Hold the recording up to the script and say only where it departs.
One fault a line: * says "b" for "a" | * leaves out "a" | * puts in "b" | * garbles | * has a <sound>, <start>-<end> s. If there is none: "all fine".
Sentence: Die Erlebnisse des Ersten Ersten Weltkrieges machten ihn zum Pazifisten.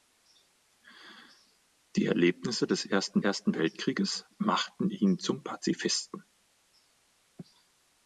all fine